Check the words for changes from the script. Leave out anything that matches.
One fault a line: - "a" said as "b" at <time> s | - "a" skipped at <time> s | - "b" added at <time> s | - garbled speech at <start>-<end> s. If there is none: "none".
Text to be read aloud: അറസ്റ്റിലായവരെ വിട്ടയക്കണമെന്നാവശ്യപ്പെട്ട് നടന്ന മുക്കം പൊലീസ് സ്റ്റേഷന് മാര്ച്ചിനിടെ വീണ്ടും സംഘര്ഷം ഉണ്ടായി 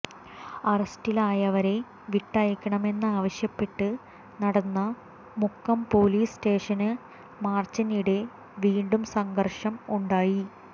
none